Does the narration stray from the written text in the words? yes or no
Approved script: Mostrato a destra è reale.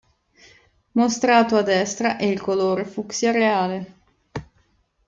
yes